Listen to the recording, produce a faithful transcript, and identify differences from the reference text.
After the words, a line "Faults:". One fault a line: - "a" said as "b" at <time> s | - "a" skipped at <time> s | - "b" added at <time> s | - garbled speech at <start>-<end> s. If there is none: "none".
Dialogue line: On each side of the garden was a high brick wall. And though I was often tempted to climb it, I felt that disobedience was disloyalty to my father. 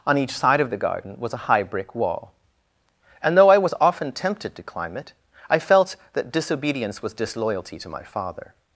On each side of the garden was a high brick wall. And though I was often tempted to climb it, I felt that disobedience was disloyalty to my father.
Faults:
none